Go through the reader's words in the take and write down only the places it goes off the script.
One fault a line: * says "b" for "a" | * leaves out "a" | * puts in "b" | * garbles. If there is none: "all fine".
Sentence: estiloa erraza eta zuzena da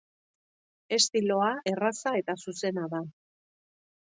all fine